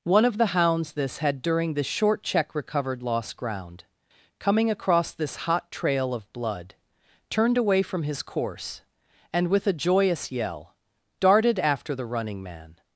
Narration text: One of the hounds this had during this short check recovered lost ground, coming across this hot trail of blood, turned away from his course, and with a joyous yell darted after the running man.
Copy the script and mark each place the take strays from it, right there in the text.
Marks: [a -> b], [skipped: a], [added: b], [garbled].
One of the hounds this had during this short check recovered lost ground, coming across this hot trail of blood, turned away from his course, and with a joyous yell darted after the running man.